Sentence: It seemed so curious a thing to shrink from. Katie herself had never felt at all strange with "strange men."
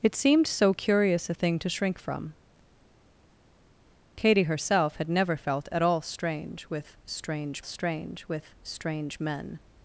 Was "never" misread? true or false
false